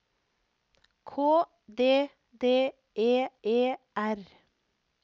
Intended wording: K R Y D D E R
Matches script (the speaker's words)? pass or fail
fail